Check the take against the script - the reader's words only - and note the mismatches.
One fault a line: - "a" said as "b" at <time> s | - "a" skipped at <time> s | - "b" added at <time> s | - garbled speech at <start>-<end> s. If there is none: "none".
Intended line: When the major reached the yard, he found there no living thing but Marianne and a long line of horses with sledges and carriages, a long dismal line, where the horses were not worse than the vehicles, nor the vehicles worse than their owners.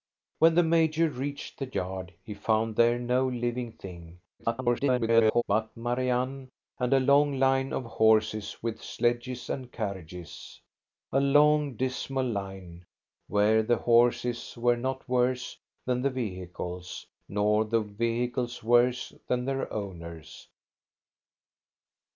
- garbled speech at 4.4-5.4 s